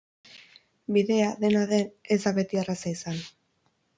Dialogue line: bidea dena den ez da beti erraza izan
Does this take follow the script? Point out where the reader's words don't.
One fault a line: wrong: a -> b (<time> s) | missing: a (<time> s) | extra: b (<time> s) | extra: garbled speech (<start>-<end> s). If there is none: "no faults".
no faults